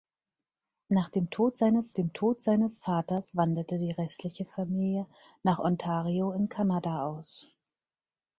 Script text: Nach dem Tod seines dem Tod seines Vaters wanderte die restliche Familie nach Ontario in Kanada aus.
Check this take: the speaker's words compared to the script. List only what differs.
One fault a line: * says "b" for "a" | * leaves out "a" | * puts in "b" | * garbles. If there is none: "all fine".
all fine